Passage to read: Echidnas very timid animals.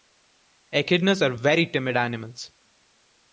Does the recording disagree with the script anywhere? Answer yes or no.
yes